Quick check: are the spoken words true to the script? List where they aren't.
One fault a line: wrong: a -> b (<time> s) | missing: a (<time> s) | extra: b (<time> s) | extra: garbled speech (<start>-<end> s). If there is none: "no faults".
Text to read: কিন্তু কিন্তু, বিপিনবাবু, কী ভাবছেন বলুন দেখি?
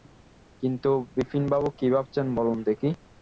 missing: কিন্তু (0.9 s)